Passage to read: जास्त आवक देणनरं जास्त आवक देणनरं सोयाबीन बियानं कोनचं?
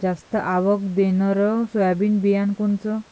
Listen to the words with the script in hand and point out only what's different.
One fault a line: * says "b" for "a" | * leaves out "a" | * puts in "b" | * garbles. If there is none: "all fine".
* leaves out "जास्त आवक देणनरं"